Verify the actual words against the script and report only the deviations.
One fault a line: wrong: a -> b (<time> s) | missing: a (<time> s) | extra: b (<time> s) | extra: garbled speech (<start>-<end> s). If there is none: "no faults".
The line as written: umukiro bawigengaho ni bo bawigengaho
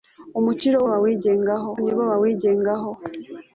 no faults